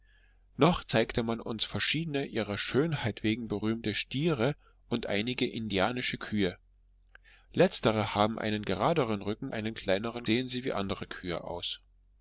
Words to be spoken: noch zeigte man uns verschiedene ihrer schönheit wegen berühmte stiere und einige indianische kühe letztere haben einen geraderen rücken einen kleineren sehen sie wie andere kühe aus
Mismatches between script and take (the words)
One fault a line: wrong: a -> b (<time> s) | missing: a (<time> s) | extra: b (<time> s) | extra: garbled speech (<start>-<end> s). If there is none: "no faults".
no faults